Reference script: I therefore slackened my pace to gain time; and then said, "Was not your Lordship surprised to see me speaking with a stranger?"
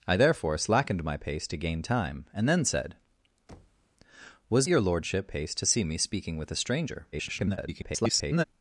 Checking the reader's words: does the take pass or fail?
fail